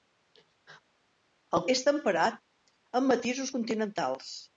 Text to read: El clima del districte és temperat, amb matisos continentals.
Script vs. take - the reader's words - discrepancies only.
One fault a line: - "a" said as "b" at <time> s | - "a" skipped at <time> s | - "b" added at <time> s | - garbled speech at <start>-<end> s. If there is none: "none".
- "clima del districte" skipped at 1.6 s